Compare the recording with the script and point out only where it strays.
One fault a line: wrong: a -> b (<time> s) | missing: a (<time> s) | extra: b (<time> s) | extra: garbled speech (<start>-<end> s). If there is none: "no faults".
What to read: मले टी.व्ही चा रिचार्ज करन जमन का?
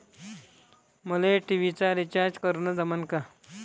no faults